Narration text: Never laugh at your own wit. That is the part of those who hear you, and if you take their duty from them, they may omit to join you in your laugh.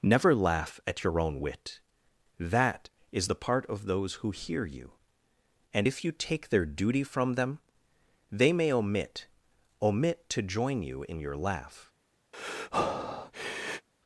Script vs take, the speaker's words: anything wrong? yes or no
yes